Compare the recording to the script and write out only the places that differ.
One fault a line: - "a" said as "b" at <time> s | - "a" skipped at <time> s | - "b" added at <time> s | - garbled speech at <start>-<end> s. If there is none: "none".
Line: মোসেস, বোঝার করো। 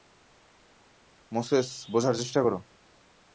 - "চেষ্টা" added at 2.1 s